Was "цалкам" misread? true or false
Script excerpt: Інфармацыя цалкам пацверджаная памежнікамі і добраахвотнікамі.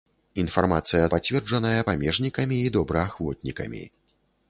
true